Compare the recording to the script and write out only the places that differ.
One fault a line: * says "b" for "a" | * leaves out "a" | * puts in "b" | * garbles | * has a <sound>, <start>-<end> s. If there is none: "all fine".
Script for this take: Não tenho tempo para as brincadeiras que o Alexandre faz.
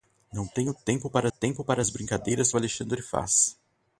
* puts in "tempo para"
* leaves out "que"